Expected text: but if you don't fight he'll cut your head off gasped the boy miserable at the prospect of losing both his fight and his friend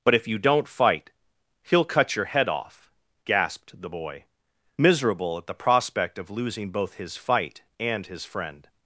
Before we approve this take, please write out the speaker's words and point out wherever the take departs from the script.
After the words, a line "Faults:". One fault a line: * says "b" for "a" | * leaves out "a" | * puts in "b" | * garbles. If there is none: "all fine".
but if you don't fight he'll cut your head off gasped the boy miserable at the prospect of losing both his fight and his friend
Faults:
all fine